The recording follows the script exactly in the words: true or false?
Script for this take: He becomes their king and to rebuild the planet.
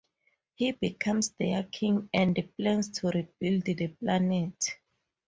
false